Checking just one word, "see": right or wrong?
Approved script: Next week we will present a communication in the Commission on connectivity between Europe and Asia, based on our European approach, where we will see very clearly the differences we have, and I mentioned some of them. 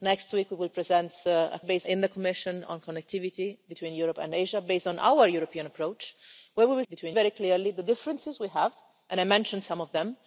wrong